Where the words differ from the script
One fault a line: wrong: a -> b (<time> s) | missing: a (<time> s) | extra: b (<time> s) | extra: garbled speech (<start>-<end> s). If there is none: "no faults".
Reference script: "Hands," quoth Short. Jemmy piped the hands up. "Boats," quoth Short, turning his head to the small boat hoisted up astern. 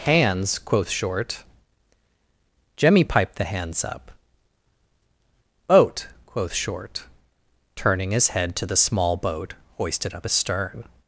wrong: Boats -> Boat (5.7 s)